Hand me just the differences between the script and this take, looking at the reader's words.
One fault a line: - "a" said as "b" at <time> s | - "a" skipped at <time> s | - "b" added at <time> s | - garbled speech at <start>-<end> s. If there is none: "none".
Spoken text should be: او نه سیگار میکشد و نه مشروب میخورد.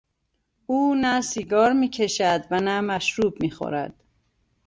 none